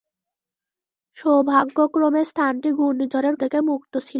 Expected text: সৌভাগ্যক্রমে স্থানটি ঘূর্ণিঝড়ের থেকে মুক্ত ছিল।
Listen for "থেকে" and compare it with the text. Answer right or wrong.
right